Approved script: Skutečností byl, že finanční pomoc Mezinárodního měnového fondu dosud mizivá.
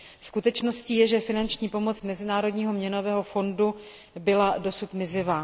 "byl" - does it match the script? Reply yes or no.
no